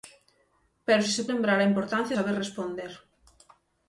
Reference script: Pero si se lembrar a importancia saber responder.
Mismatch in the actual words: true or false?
false